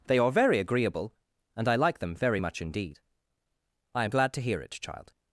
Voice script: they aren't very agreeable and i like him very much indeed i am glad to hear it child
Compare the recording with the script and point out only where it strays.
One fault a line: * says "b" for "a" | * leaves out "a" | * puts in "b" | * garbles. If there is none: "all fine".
* says "are" for "aren't"
* says "them" for "him"